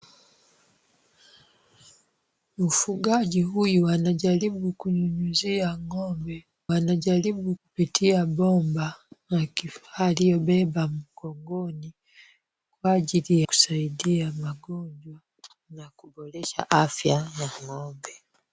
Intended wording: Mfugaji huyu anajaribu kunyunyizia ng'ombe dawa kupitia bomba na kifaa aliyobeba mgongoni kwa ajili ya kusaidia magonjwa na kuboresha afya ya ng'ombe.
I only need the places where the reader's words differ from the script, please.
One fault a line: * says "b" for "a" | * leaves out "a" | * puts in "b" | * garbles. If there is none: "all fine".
* says "anajaribu" for "dawa"
* leaves out "ya"